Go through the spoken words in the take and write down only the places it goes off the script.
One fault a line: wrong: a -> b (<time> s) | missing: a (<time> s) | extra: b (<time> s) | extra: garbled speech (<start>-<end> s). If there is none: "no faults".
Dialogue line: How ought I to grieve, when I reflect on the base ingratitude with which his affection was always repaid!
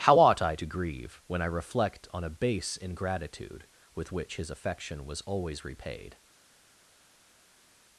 wrong: the -> a (2.2 s)